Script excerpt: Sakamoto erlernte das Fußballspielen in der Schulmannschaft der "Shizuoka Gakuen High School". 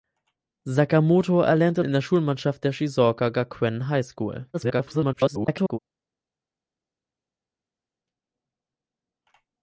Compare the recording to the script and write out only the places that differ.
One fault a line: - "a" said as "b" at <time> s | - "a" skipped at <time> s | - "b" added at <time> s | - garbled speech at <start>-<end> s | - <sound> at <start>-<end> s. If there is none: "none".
- "das Fußballspielen" skipped at 1.8 s
- garbled speech at 4.5-5.8 s